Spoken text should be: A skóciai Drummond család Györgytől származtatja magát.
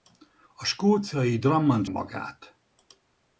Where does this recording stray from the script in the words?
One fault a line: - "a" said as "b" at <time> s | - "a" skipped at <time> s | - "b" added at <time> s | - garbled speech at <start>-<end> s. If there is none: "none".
- "család Györgytől származtatja" skipped at 1.8 s